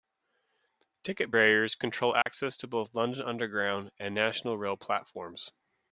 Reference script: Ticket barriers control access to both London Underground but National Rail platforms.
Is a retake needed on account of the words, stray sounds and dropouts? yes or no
yes